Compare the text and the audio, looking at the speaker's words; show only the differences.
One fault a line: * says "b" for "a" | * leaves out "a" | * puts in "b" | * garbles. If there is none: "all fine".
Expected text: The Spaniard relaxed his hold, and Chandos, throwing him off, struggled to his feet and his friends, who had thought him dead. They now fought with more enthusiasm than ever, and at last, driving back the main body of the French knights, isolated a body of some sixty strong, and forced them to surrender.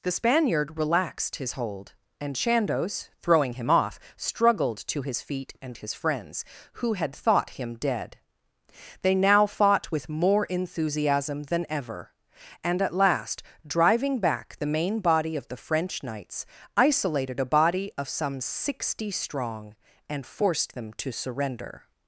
all fine